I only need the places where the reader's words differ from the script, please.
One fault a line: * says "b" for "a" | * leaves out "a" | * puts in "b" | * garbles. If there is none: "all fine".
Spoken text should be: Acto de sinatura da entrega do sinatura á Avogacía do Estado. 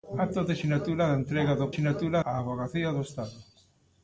all fine